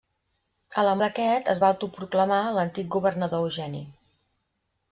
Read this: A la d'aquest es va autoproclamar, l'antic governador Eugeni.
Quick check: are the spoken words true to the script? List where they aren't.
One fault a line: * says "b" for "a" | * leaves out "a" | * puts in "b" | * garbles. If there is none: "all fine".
all fine